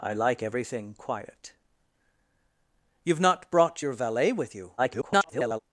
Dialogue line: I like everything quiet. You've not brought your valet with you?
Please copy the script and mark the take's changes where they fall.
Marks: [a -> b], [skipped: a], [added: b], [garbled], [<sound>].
I like everything quiet. You've not brought your valet with you? [garbled]